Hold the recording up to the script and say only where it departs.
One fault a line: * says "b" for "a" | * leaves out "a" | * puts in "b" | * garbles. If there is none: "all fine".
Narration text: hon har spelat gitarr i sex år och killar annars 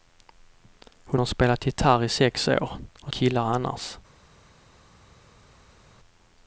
all fine